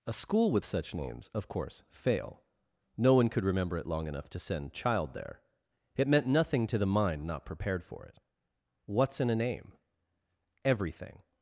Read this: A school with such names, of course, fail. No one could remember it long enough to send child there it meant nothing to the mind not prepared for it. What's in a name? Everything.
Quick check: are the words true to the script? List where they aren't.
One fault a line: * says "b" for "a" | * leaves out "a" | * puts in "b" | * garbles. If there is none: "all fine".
all fine